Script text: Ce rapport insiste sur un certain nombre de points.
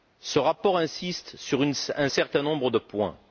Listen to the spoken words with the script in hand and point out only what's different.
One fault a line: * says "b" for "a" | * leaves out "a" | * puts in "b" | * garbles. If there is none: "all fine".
all fine